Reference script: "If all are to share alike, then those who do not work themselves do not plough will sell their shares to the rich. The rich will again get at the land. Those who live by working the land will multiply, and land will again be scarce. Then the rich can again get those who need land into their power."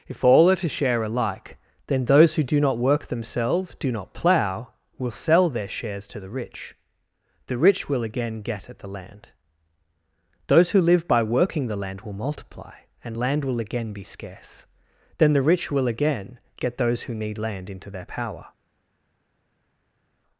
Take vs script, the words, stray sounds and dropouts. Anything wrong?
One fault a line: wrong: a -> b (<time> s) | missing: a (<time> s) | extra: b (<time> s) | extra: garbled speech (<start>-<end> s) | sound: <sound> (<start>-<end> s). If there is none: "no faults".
wrong: can -> will (15.7 s)